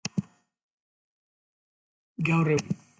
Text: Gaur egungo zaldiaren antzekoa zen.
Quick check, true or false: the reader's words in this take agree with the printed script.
false